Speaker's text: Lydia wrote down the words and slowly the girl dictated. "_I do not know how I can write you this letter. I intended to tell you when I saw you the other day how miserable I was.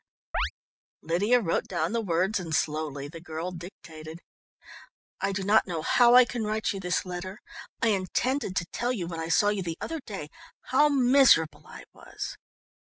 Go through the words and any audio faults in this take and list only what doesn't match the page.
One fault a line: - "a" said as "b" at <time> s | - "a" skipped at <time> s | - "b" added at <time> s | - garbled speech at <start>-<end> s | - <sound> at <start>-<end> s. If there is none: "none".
- chirp at 0.3-0.5 s